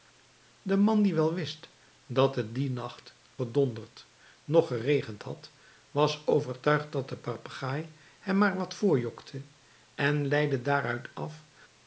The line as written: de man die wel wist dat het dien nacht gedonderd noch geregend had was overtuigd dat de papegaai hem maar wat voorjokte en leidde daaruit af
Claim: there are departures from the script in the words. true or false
false